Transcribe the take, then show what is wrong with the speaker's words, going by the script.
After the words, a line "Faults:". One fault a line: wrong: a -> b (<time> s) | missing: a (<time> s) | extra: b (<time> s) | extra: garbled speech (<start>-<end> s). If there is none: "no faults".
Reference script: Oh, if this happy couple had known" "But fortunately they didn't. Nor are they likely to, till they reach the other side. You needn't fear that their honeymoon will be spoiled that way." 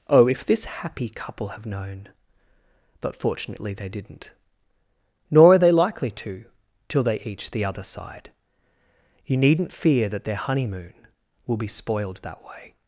Oh, if this happy couple have known" "But fortunately they didn't. Nor are they likely to, till they each the other side. You needn't fear that their honeymoon will be spoiled that way."
Faults:
wrong: had -> have (1.5 s)
wrong: reach -> each (7.2 s)